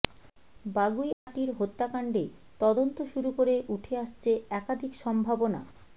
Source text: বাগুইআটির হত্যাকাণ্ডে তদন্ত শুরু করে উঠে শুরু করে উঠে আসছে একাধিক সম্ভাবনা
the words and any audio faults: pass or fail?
fail